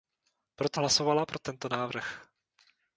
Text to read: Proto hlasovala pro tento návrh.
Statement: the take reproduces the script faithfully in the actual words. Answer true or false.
true